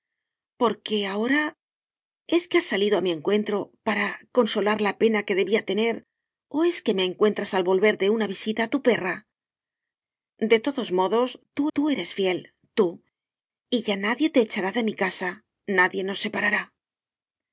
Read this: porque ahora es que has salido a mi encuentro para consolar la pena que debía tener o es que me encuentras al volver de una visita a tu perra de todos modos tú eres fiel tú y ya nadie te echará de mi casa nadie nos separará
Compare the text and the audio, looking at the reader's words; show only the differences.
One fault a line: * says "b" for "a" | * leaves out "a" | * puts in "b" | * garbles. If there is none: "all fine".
* puts in "tú"